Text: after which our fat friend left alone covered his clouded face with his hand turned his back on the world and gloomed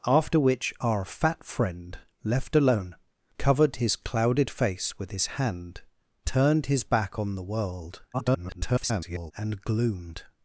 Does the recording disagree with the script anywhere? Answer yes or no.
yes